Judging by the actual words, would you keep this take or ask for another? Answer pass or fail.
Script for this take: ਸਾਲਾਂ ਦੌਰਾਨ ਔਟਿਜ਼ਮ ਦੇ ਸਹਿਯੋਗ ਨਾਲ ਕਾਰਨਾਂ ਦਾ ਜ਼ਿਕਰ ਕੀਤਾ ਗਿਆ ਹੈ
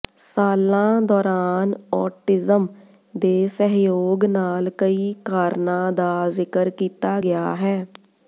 fail